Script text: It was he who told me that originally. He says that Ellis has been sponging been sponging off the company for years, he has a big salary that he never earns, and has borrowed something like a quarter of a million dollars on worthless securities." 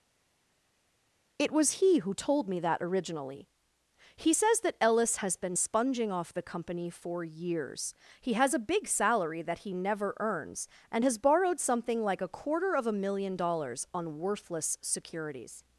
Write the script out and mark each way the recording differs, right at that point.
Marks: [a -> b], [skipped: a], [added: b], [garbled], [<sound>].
It was he who told me that originally. He says that Ellis has been sponging [skipped: been sponging] off the company for years, he has a big salary that he never earns, and has borrowed something like a quarter of a million dollars on worthless securities."